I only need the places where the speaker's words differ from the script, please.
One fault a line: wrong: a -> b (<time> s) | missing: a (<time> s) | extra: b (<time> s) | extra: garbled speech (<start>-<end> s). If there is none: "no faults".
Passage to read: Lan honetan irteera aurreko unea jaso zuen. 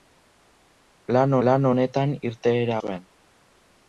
extra: lan (1.5 s)
missing: aurreko unea jaso (2.8 s)